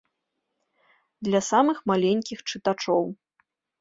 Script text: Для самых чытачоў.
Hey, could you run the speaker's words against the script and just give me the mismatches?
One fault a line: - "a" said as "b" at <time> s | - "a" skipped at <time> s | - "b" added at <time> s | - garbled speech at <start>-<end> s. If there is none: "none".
- "маленькіх" added at 1.9 s